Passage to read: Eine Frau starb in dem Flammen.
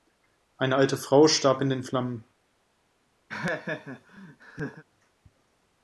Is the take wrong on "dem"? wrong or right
wrong